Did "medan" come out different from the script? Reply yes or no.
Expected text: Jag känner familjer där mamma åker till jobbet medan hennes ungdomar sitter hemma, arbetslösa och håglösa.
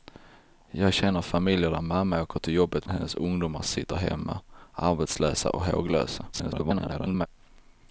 yes